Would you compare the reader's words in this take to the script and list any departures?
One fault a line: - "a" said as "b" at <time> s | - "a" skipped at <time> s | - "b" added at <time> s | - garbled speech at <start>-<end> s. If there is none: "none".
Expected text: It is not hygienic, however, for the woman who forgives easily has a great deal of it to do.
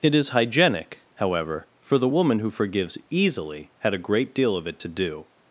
- "not" skipped at 0.3 s
- "has" said as "had" at 3.8 s